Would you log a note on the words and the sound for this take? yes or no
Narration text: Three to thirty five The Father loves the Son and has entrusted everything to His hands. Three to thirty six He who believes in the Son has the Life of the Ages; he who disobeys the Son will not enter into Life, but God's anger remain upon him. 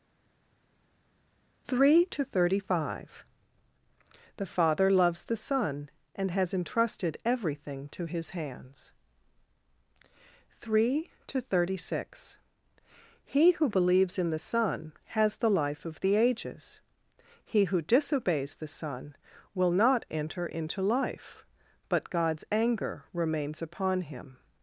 yes